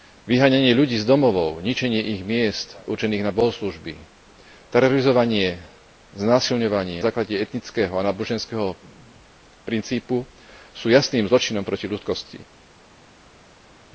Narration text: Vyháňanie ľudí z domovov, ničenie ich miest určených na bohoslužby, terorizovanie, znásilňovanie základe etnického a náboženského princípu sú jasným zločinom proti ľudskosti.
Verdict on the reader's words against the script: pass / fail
pass